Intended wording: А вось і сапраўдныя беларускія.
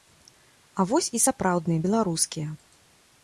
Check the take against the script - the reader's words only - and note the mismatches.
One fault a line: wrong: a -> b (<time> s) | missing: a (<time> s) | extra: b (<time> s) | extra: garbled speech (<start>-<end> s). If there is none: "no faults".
no faults